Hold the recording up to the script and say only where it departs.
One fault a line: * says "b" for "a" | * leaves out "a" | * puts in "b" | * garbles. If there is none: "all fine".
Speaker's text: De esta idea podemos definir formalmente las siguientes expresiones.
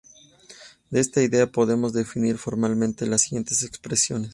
all fine